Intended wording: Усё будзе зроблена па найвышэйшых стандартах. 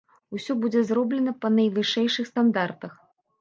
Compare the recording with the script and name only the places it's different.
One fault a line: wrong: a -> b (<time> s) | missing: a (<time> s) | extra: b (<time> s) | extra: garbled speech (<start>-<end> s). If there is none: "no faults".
no faults